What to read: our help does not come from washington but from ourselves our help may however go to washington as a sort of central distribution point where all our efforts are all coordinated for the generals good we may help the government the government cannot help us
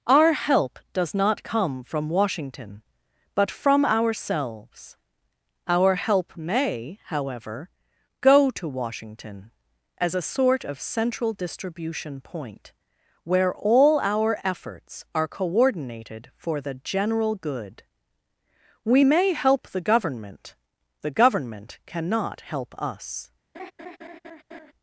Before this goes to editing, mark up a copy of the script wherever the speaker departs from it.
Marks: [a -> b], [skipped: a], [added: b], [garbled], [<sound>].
our help does not come from washington but from ourselves our help may however go to washington as a sort of central distribution point where all our efforts are [skipped: all] coordinated for the [generals -> general] good we may help the government the government cannot help us [laugh]